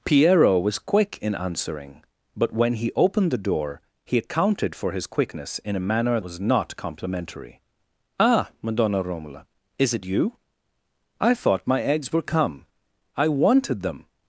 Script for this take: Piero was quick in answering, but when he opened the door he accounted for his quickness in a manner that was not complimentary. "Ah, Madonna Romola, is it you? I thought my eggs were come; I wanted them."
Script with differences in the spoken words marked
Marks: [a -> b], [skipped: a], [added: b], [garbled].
Piero was quick in answering, but when he opened the door he accounted for his quickness in a manner [skipped: that] was not complimentary. "Ah, Madonna Romola, is it you? I thought my eggs were come; I wanted them."